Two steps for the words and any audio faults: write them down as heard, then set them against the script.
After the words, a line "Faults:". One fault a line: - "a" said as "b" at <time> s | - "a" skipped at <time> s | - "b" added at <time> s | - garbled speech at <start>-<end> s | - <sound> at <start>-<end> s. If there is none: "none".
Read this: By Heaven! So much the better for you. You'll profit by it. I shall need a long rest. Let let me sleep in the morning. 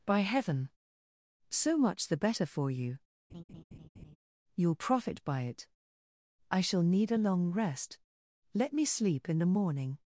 By Heaven! So much the better for you. You'll profit by it. I shall need a long rest. Let me sleep in the morning.
Faults:
- laugh at 3.3-4.2 s
- "let" skipped at 8.7 s